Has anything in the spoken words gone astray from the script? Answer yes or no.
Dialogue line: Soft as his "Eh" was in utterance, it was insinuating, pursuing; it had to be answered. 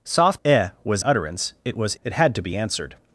yes